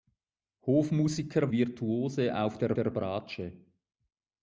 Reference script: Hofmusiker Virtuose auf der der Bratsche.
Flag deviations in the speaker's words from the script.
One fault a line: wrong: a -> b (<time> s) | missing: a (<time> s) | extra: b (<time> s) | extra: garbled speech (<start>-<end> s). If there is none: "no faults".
no faults